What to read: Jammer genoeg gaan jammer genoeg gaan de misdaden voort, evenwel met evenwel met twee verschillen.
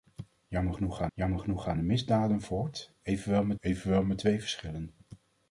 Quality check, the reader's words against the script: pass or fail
pass